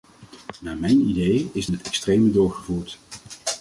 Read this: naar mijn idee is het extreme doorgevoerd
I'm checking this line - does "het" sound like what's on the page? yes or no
yes